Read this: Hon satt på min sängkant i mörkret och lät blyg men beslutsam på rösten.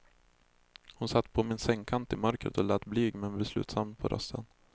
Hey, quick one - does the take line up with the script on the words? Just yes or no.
yes